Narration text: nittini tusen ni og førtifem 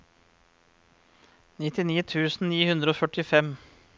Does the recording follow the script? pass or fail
fail